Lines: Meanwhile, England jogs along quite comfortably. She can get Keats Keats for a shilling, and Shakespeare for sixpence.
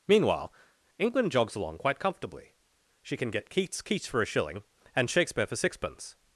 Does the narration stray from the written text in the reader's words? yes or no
no